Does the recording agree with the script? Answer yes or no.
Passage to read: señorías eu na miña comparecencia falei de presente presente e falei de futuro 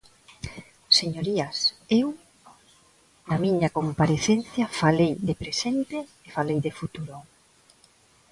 no